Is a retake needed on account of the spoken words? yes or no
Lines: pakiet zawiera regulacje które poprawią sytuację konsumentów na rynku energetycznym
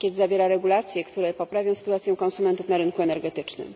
no